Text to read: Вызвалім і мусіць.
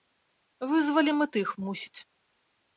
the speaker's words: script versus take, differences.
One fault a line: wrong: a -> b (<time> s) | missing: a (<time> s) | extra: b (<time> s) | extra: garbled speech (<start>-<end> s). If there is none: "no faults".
extra: тых (1.3 s)